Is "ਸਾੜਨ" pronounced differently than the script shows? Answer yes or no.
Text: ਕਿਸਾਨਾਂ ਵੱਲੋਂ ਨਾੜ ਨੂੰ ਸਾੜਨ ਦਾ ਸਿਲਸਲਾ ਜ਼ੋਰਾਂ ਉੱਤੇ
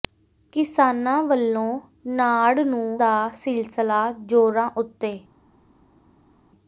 yes